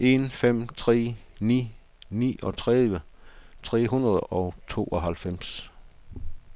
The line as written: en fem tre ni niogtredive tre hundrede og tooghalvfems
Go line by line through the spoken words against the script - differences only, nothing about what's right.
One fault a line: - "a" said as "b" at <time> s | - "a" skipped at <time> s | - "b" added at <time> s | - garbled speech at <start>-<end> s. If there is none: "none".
none